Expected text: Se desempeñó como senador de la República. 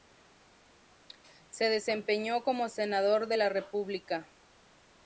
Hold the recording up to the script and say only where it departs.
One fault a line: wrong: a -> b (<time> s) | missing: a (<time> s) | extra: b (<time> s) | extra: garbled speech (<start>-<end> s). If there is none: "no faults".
no faults